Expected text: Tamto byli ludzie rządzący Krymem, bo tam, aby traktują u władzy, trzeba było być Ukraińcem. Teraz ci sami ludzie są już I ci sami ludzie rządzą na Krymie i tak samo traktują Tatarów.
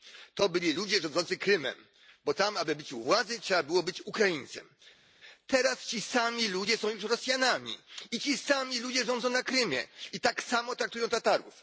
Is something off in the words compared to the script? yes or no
yes